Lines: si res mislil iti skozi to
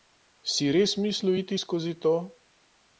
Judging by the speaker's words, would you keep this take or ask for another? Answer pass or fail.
pass